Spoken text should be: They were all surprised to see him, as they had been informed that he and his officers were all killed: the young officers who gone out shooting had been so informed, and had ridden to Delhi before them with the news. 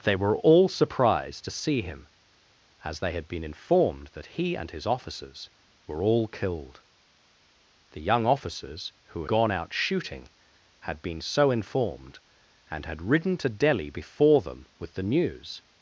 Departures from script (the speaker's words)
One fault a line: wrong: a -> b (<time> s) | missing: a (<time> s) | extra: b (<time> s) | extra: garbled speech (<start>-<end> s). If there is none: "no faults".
no faults